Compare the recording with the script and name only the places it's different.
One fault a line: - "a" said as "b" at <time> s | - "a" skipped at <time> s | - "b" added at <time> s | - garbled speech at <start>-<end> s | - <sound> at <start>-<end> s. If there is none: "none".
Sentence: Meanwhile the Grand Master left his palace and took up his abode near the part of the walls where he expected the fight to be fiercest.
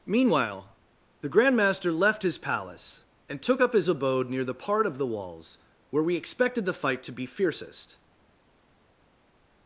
- "he" said as "we" at 6.0 s